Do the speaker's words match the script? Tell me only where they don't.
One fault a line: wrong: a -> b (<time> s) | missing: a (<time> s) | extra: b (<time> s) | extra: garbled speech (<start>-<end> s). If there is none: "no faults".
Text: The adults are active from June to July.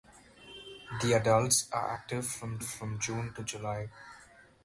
extra: from (2.6 s)